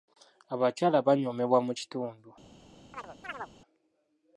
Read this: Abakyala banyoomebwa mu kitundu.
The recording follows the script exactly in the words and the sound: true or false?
false